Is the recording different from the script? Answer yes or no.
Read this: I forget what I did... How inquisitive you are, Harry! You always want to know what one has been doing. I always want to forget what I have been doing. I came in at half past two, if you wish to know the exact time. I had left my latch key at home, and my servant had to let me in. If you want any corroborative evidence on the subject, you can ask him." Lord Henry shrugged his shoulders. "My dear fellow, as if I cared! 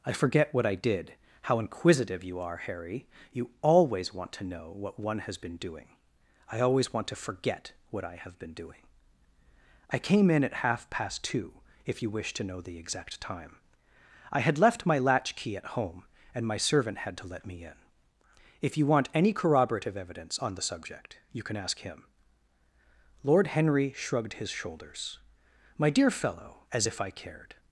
no